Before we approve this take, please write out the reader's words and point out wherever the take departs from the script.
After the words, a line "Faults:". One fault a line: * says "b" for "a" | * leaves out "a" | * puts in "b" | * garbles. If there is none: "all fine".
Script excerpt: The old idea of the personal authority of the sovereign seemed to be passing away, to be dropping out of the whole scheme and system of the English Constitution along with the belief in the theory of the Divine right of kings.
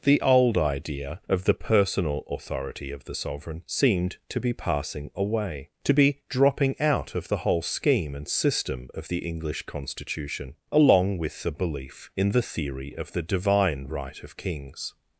The old idea of the personal authority of the sovereign seemed to be passing away, to be dropping out of the whole scheme and system of the English Constitution along with the belief in the theory of the Divine right of kings.
Faults:
all fine